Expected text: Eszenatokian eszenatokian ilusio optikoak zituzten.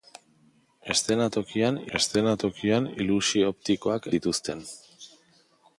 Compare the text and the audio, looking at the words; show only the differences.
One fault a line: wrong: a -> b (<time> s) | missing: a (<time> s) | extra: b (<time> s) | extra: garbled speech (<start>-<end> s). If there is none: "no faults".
no faults